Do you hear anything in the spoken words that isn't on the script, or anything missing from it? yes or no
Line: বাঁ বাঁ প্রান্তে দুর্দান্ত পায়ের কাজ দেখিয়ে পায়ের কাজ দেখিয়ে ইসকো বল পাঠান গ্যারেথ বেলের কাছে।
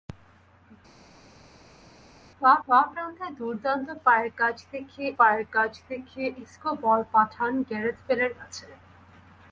no